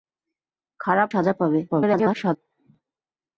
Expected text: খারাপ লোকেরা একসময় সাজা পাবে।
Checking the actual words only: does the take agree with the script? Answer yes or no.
no